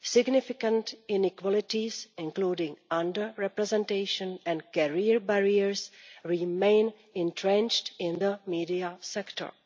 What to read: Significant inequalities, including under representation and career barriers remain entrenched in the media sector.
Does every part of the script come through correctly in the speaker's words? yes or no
yes